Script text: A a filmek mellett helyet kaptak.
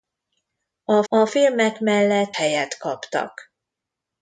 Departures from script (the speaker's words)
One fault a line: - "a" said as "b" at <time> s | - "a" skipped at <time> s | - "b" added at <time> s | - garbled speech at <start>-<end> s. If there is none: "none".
none